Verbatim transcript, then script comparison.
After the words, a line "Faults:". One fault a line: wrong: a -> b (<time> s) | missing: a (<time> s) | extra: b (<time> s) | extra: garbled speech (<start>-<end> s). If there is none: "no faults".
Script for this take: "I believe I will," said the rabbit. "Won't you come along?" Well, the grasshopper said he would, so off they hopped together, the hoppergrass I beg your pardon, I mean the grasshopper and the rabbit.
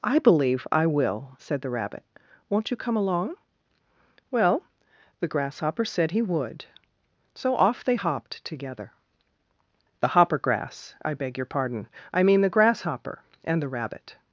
"I believe I will," said the rabbit. "Won't you come along?" Well, the grasshopper said he would, so off they hopped together, the hoppergrass I beg your pardon, I mean the grasshopper and the rabbit.
Faults:
no faults